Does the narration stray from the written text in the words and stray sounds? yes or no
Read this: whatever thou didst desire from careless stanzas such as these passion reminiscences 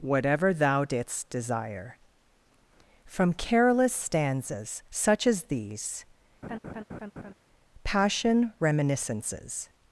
yes